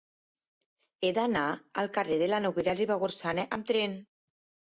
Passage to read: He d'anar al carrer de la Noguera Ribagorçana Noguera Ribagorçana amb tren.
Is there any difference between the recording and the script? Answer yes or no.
yes